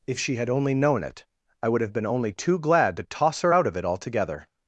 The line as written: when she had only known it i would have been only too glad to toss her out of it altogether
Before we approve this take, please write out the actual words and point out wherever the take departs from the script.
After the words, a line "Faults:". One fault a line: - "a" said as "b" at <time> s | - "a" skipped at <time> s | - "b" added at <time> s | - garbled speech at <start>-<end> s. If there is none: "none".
if she had only known it i would have been only too glad to toss her out of it altogether
Faults:
- "when" said as "if" at 0.1 s